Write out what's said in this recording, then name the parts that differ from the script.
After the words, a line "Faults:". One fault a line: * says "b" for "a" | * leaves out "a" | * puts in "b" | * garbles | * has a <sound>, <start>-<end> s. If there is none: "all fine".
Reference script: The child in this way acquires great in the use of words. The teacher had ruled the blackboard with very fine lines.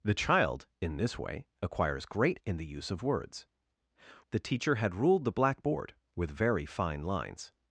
The child in this way acquires great in the use of words. The teacher had ruled the blackboard with very fine lines.
Faults:
all fine